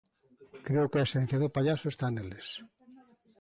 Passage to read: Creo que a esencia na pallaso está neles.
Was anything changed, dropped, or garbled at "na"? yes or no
yes